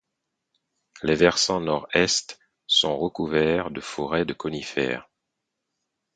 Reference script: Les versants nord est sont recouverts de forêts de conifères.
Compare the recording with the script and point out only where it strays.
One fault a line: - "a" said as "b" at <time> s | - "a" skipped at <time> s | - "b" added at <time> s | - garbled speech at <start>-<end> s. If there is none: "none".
none